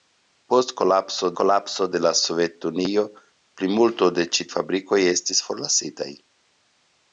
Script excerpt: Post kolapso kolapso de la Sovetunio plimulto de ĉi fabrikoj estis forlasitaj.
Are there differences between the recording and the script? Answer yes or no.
no